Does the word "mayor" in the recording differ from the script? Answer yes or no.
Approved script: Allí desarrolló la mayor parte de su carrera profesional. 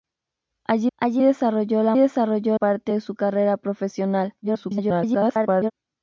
yes